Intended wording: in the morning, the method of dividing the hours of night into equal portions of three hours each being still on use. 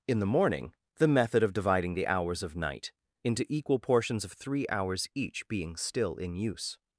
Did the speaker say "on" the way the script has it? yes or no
no